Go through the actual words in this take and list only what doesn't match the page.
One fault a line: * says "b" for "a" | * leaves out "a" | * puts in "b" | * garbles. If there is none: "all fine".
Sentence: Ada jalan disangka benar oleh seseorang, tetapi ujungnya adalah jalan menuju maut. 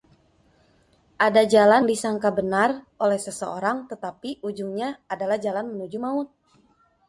all fine